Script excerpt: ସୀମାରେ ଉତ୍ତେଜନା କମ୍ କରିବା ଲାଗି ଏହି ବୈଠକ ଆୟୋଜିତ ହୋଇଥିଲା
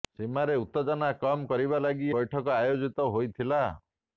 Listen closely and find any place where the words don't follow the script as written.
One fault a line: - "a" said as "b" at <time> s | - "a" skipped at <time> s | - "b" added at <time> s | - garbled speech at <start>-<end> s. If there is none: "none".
- "ଏହି" skipped at 2.1 s